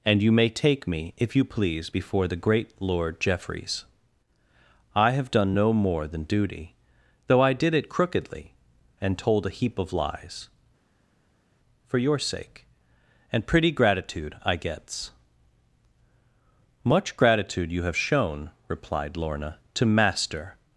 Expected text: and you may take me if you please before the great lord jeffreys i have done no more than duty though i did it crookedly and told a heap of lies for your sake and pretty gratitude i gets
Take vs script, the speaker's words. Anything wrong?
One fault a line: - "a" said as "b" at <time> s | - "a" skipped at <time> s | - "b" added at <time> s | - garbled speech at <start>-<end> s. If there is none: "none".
- "much gratitude you have shown replied lorna to master" added at 16.8 s